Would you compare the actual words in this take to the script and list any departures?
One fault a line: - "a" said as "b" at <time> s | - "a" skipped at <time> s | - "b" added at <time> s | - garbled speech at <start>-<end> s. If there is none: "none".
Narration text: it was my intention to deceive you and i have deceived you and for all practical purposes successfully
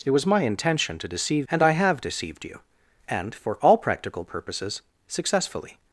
- "you" skipped at 1.5 s